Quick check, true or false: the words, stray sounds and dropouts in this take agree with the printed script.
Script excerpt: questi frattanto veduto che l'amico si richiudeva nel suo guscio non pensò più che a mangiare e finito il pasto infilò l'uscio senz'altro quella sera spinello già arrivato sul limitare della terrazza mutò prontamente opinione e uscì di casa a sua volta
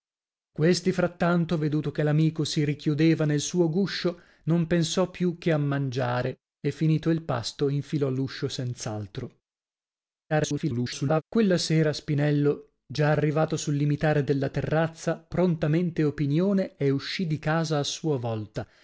false